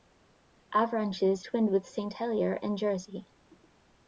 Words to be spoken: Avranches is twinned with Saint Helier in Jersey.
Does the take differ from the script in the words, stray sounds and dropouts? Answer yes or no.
yes